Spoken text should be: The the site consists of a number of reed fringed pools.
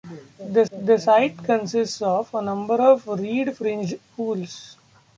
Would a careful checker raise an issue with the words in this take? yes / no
no